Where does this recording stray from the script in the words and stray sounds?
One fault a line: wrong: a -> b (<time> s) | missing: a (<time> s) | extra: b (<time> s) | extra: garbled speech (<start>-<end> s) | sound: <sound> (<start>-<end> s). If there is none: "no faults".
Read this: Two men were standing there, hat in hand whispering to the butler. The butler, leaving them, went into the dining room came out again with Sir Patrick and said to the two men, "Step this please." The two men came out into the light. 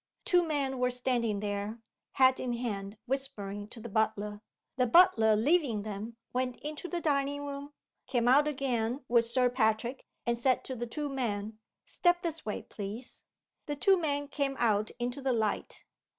extra: way (12.4 s)